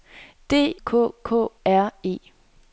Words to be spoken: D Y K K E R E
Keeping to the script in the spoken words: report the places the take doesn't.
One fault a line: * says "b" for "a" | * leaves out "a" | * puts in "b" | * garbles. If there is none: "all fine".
* leaves out "Y"
* leaves out "E"